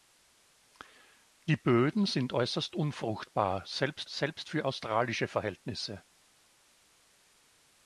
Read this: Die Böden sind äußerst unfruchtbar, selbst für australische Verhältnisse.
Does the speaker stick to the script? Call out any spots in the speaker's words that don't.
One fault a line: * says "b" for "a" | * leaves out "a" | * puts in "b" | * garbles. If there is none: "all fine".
* puts in "selbst"